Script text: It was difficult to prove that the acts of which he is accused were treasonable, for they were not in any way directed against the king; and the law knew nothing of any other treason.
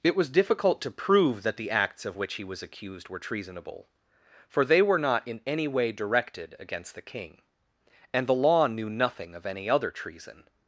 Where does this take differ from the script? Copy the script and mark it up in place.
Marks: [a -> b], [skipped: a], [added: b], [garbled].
It was difficult to prove that the acts of which he [is -> was] accused were treasonable, for they were not in any way directed against the king; and the law knew nothing of any other treason.